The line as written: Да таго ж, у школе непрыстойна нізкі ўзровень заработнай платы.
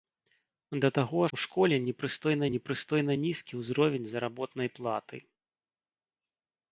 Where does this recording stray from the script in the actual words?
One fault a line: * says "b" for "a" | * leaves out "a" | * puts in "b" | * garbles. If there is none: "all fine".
* leaves out "ж"
* puts in "непрыстойна"